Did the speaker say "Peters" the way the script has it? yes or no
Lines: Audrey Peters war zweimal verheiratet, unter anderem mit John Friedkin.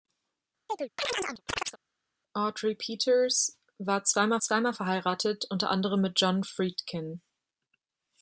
yes